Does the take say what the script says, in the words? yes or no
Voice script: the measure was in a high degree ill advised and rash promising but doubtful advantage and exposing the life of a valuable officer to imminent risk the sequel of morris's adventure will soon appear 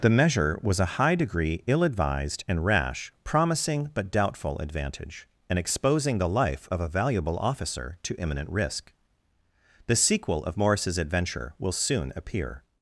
no